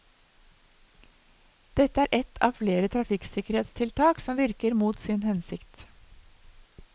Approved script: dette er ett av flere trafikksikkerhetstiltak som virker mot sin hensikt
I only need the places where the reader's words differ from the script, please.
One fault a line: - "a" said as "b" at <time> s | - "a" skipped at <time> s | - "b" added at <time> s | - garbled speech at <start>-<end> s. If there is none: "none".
none